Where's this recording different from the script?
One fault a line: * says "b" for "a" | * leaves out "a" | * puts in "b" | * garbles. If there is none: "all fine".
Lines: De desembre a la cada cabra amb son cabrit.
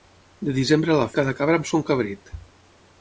all fine